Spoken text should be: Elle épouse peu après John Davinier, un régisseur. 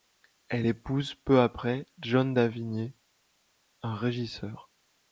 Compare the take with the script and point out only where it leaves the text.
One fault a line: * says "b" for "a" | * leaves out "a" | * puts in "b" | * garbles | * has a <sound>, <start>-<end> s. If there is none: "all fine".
all fine